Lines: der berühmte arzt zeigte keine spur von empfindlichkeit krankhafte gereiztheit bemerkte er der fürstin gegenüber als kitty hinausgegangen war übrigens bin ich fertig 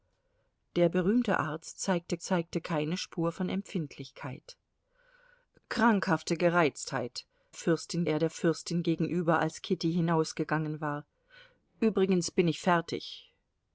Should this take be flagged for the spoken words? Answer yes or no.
yes